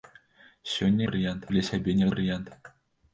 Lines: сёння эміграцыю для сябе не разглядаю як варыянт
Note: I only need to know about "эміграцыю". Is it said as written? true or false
false